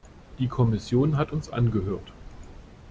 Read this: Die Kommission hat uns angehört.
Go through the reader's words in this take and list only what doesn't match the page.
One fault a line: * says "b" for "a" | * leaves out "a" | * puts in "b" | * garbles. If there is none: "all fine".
all fine